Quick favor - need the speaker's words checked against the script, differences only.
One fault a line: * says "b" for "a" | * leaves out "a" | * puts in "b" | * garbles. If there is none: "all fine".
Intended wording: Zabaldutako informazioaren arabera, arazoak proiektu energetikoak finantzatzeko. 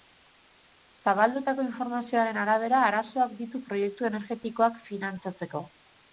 * puts in "ditu"